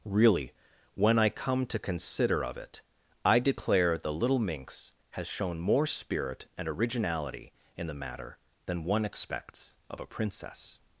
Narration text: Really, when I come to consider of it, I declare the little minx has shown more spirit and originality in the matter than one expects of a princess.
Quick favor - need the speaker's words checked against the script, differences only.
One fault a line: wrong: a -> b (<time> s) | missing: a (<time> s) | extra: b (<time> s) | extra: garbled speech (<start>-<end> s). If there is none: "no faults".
no faults